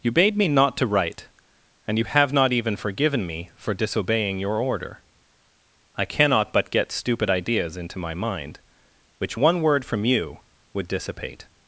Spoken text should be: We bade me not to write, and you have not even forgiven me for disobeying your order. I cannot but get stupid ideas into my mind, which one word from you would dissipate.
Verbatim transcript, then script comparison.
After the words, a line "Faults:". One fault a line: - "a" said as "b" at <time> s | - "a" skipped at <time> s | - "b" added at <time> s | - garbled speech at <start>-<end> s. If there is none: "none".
You bade me not to write, and you have not even forgiven me for disobeying your order. I cannot but get stupid ideas into my mind, which one word from you would dissipate.
Faults:
- "We" said as "You" at 0.0 s